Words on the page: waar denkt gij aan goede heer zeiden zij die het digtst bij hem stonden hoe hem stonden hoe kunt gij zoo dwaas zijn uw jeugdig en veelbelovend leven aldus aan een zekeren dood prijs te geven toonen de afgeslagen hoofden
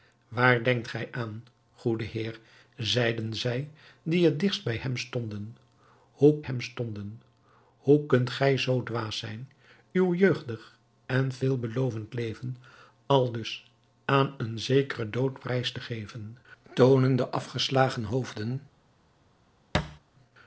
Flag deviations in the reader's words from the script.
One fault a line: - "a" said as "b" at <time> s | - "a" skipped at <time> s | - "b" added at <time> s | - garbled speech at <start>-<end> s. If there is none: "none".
none